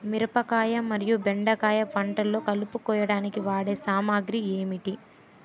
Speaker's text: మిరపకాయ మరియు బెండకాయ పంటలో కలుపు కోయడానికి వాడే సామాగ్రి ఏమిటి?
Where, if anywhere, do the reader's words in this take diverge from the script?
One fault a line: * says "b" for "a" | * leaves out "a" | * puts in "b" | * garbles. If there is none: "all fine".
all fine